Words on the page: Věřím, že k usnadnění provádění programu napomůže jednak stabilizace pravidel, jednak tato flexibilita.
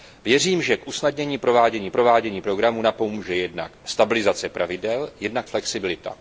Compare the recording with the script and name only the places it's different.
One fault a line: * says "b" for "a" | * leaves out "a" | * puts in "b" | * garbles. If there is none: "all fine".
* puts in "provádění"
* leaves out "tato"